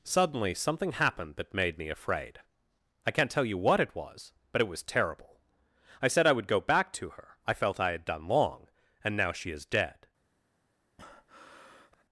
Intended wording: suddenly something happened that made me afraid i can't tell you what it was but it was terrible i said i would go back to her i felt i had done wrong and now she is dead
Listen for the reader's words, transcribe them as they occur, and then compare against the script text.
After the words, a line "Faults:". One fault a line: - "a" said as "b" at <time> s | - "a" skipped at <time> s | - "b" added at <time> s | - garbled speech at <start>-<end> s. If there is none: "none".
suddenly something happened that made me afraid i can't tell you what it was but it was terrible i said i would go back to her i felt i had done long and now she is dead
Faults:
- "wrong" said as "long" at 8.3 s